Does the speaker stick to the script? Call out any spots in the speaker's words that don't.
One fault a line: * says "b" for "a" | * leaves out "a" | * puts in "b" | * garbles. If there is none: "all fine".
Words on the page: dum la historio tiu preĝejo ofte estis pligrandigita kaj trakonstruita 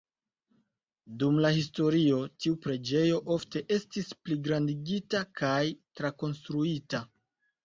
all fine